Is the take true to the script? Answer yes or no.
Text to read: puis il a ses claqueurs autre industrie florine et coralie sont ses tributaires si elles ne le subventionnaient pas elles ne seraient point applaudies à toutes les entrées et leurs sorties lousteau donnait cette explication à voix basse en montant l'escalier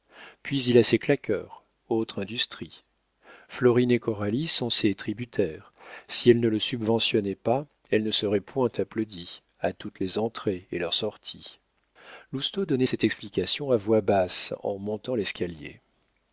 yes